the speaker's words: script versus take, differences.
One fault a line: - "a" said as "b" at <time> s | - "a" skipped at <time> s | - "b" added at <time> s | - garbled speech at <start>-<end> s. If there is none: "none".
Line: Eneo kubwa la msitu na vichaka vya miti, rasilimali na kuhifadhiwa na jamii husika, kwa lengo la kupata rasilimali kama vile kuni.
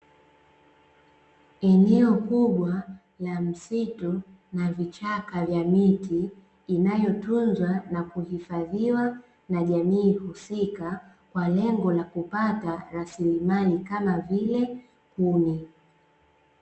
- "rasilimali" said as "inayotunzwa" at 6.7 s